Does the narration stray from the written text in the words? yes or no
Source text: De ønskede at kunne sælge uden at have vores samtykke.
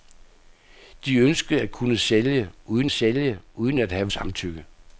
yes